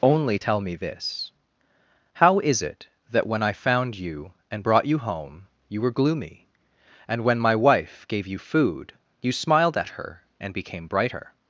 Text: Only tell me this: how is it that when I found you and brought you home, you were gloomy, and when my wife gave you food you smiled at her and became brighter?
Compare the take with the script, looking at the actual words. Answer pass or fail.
pass